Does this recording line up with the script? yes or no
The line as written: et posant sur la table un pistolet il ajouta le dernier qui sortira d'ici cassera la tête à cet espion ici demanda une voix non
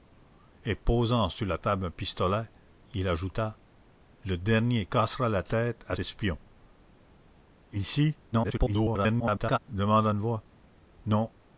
no